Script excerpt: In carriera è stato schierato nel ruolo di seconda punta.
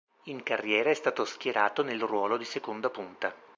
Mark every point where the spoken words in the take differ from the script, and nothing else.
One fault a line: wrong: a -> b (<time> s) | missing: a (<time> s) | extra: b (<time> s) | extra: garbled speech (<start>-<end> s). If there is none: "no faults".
no faults